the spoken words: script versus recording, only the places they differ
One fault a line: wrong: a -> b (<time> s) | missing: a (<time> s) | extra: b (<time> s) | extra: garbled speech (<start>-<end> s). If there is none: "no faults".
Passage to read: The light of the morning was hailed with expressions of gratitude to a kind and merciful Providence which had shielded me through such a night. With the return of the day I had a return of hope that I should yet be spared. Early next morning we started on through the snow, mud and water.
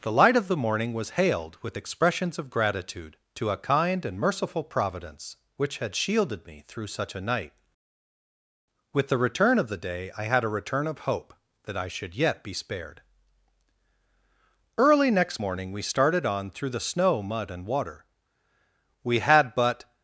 extra: We had but (19.0 s)